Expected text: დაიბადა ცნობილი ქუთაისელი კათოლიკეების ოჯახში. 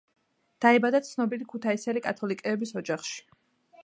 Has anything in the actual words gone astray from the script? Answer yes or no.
no